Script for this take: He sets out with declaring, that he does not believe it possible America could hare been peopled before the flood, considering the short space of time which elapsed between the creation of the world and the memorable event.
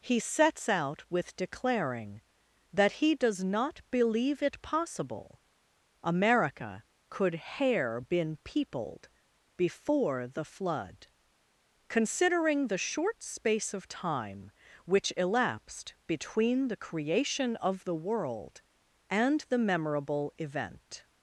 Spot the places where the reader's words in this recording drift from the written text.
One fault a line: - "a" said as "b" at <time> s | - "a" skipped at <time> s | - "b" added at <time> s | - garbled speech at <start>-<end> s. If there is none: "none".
none